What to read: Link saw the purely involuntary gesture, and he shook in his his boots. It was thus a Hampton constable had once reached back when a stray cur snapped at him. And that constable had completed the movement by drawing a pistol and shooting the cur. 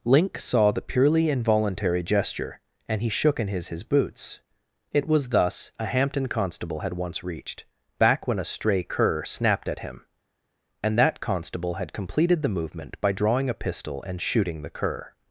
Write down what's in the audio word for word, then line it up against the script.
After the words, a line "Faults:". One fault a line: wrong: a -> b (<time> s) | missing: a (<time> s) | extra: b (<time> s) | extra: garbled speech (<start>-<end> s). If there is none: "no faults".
Link saw the purely involuntary gesture, and he shook in his his boots. It was thus a Hampton constable had once reached back when a stray cur snapped at him. And that constable had completed the movement by drawing a pistol and shooting the cur.
Faults:
no faults